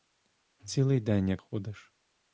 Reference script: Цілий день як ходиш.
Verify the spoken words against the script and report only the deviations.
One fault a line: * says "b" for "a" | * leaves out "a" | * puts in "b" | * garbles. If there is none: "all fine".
all fine